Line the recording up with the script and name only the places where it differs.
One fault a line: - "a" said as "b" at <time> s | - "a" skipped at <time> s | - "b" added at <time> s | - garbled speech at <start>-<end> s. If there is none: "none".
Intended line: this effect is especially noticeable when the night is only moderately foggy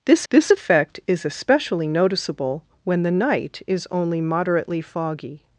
- "this" added at 0.3 s